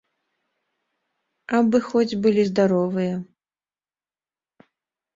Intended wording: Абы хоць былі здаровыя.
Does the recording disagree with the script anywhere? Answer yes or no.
no